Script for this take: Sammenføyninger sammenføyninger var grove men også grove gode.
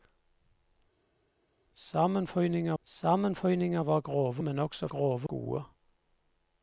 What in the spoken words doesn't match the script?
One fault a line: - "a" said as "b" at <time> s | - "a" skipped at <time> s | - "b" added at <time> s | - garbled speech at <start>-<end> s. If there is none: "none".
none